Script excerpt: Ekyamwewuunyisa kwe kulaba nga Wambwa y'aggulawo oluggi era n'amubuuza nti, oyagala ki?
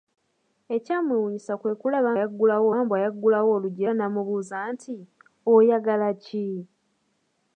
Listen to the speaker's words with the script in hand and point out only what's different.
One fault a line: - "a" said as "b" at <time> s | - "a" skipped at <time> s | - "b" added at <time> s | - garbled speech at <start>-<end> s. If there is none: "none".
- "nga" said as "y'aggulawo" at 2.2 s